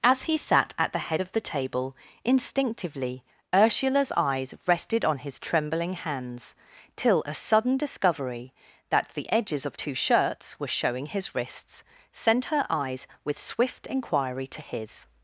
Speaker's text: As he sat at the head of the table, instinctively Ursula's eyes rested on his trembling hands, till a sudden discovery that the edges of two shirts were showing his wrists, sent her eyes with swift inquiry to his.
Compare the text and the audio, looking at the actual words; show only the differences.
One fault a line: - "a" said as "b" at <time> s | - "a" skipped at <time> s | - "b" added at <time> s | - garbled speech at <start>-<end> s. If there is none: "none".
none